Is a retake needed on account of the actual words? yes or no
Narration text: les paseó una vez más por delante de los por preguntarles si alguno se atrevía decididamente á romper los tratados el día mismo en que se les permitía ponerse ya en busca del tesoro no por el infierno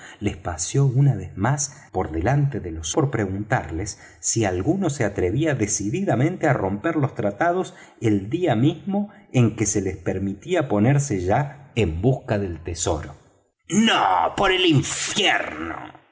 no